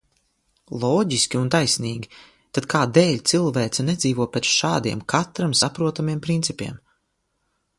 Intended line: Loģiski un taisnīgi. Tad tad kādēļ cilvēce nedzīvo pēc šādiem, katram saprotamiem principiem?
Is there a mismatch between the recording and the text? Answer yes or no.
yes